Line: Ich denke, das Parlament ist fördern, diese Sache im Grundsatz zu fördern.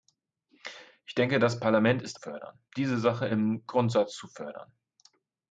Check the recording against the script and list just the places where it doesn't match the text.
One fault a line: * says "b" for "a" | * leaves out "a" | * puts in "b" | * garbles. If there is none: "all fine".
all fine